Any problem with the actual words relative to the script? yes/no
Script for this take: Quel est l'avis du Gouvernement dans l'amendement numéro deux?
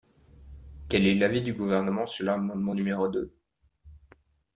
yes